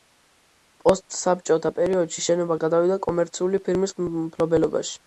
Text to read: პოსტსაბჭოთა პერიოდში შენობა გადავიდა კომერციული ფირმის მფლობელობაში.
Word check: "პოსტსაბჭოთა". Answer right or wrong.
right